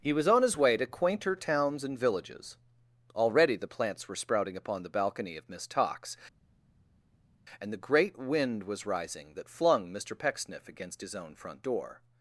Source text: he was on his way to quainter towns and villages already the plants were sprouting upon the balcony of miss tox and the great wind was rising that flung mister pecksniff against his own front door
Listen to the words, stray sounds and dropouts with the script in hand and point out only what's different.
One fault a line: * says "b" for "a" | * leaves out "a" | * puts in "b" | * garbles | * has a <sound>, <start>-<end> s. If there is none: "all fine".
all fine